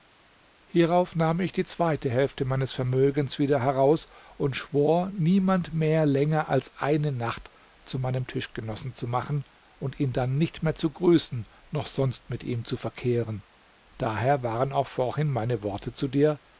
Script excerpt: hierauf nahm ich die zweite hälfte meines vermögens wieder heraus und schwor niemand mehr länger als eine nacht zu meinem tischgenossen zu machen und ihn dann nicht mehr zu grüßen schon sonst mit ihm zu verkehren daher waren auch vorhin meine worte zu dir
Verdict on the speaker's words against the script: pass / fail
fail